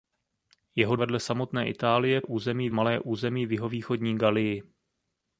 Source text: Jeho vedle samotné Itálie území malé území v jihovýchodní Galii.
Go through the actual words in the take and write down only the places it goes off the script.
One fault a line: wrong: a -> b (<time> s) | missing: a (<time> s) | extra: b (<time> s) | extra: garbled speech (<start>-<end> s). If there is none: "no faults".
no faults